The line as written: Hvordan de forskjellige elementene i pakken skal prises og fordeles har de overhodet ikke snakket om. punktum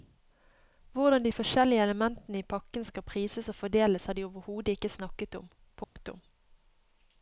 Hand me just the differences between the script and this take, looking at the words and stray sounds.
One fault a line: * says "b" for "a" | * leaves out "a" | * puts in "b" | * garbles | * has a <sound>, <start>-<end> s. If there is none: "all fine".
* has a dropout, 5.8-6.0 s